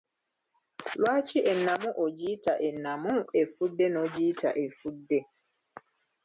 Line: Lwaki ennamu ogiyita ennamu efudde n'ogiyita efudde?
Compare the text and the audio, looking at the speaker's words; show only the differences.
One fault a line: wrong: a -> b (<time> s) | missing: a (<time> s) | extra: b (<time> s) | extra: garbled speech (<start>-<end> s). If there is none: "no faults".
no faults